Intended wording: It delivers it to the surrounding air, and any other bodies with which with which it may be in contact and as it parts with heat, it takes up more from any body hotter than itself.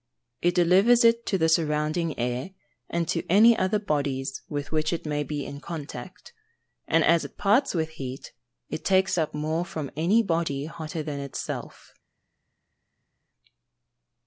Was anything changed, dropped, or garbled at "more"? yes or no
no